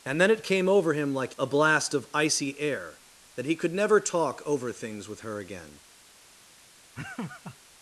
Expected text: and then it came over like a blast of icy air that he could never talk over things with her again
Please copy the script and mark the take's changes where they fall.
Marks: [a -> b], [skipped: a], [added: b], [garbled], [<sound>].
and then it came over [added: him] like a blast of icy air that he could never talk over things with her again [laugh]